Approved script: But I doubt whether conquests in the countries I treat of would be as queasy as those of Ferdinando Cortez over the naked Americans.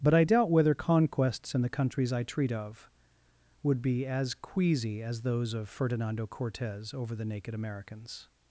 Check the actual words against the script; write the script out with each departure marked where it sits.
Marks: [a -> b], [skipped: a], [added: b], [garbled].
But I doubt whether conquests in the countries I treat of would be as queasy as those of Ferdinando Cortez over the naked Americans.